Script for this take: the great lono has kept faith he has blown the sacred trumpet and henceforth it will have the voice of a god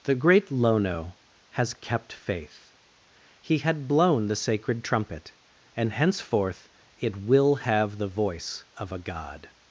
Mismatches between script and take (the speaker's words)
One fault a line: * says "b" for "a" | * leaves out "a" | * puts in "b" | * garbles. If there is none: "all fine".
* says "had" for "has"